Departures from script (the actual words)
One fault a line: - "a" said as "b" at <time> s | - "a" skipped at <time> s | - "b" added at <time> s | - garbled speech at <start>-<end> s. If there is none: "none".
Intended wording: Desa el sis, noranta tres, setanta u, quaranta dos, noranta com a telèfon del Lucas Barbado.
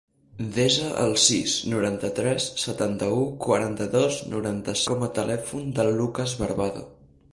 none